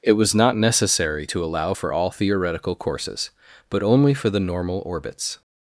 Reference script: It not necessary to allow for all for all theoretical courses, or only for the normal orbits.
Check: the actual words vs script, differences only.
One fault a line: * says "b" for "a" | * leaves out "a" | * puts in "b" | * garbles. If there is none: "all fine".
* puts in "was"
* leaves out "for all"
* says "but" for "or"